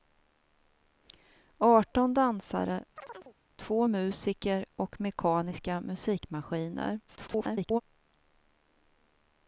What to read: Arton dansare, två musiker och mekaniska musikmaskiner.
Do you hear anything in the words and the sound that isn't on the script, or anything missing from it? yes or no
yes